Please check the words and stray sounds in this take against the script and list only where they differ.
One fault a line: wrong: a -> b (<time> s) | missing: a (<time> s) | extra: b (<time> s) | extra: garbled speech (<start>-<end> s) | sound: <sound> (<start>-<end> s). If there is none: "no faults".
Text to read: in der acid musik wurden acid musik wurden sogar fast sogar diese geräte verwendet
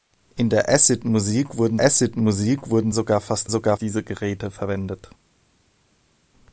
no faults